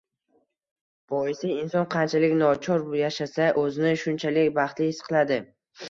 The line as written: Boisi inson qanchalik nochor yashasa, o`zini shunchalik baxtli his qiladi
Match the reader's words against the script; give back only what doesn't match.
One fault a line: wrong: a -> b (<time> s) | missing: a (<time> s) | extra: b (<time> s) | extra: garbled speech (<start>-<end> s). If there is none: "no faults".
no faults